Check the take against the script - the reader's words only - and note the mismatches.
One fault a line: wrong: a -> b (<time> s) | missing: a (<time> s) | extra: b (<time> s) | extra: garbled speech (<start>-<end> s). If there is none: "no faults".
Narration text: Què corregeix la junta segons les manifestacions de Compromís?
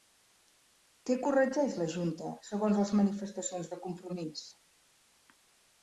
no faults